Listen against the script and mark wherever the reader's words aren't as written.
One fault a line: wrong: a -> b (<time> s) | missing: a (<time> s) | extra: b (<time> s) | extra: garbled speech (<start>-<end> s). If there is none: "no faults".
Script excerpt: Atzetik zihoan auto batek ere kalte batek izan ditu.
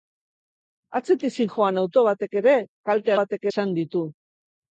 no faults